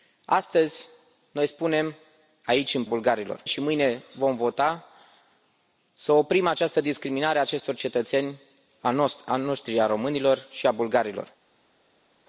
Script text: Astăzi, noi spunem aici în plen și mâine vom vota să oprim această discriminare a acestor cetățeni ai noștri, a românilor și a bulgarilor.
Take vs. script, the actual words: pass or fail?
fail